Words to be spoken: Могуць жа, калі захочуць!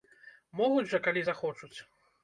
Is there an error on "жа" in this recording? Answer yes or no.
no